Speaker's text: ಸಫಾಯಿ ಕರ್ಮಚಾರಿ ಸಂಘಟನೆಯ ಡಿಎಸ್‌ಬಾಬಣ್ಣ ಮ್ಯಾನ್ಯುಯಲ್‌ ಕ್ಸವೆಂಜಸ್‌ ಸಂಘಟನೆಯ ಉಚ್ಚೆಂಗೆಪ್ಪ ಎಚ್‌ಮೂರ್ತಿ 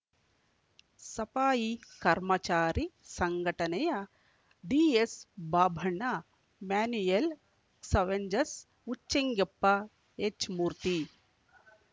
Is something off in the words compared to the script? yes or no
yes